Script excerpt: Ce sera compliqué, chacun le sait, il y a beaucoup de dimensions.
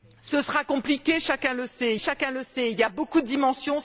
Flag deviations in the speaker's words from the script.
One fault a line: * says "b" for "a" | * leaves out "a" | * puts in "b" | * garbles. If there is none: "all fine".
* puts in "chacun le sait"